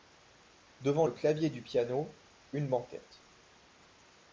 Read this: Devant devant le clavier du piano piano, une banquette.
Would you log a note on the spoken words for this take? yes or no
yes